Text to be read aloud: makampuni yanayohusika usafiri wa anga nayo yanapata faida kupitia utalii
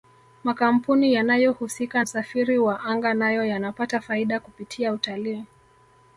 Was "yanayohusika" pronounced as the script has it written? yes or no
yes